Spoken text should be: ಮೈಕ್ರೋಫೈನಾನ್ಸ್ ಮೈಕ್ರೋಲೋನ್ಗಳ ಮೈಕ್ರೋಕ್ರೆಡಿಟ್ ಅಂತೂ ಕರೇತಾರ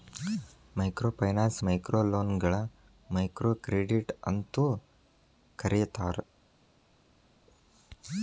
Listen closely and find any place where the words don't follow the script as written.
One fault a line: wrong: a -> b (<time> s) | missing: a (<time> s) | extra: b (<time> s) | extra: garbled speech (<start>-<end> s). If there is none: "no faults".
no faults